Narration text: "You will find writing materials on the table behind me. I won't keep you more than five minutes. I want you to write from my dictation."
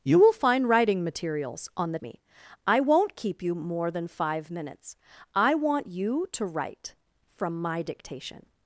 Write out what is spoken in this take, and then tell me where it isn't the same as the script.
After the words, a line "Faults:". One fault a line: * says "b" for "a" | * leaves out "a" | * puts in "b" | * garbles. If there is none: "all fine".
"You will find writing materials on the me. I won't keep you more than five minutes. I want you to write from my dictation."
Faults:
* leaves out "table behind"